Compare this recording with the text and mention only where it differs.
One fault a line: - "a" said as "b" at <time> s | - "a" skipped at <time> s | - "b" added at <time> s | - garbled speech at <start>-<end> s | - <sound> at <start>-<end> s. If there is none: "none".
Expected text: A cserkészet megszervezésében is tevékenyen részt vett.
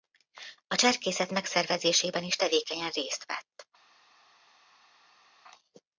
none